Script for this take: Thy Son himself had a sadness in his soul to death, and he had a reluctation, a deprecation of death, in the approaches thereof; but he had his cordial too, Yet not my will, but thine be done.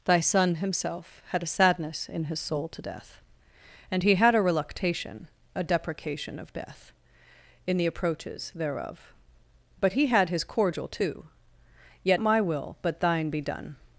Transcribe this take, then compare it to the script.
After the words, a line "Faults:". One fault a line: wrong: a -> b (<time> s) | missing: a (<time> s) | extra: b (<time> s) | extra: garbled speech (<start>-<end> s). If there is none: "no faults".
Thy Son himself had a sadness in his soul to death, and he had a reluctation, a deprecation of death, in the approaches thereof; but he had his cordial too, Yet my will, but thine be done.
Faults:
missing: not (12.2 s)